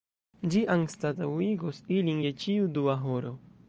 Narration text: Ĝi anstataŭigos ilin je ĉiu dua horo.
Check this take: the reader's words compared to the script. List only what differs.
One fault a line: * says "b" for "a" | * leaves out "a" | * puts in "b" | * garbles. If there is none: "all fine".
all fine